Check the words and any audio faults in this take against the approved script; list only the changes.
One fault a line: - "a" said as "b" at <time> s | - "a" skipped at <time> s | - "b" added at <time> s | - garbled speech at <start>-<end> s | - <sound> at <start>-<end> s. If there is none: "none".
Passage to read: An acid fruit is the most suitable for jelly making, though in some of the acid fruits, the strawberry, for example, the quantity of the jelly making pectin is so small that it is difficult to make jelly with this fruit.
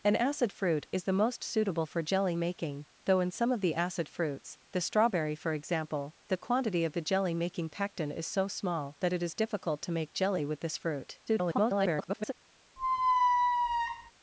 - garbled speech at 11.3-12.3 s
- squeak at 12.8-14.1 s